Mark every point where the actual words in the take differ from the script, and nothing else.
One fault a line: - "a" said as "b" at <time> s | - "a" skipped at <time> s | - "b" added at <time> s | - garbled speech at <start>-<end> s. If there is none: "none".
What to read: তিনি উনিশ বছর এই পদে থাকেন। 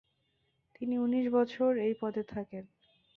none